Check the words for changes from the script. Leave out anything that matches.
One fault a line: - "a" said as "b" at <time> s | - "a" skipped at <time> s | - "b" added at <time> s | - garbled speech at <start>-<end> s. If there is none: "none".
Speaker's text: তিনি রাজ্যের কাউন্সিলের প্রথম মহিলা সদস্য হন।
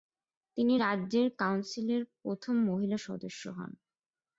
none